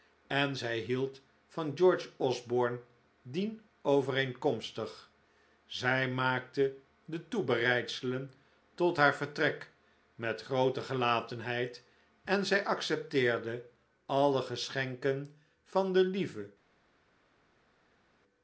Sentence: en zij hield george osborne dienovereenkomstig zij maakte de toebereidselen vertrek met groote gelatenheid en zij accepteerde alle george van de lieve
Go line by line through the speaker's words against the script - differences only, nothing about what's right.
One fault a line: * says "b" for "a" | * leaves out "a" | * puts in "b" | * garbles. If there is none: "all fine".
* puts in "van"
* puts in "tot haar"
* says "geschenken" for "george"